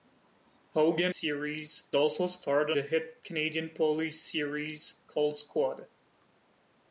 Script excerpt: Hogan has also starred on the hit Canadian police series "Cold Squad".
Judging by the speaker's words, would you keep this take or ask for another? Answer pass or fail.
fail